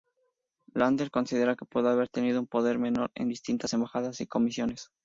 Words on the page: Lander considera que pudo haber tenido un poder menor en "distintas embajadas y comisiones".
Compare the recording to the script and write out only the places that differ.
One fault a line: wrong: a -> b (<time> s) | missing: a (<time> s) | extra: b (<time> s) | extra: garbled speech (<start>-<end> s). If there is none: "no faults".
no faults